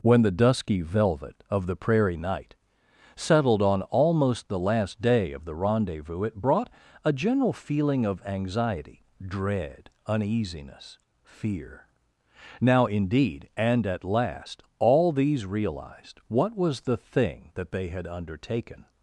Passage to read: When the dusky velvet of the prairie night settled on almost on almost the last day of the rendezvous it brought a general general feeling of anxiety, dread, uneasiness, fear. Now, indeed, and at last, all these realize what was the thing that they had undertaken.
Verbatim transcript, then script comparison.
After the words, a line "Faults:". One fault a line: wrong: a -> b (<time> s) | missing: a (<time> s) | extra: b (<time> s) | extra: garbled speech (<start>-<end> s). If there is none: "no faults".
When the dusky velvet of the prairie night settled on almost the last day of the rendezvous it brought a general feeling of anxiety, dread, uneasiness, fear. Now, indeed, and at last, all these realized what was the thing that they had undertaken.
Faults:
missing: on almost (4.5 s)
missing: general (7.5 s)
wrong: realize -> realized (15.4 s)